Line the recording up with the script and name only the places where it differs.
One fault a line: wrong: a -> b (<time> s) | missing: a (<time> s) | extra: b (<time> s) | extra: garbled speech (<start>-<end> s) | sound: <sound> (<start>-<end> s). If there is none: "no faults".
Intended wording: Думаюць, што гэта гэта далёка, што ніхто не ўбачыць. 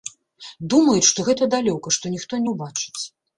missing: гэта (1.5 s)